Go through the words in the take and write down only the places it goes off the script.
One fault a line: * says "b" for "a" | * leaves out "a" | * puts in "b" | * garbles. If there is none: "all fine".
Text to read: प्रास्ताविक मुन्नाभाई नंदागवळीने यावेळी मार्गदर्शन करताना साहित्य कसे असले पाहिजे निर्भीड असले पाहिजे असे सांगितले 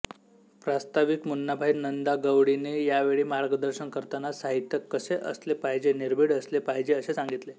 all fine